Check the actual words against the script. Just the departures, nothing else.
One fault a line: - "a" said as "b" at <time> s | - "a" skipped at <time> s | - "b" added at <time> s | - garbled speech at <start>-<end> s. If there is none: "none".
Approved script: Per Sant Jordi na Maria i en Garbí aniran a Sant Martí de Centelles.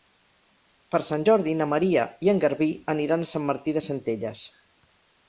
none